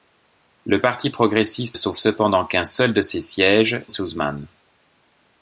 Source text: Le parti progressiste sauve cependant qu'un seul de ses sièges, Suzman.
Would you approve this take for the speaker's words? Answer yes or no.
yes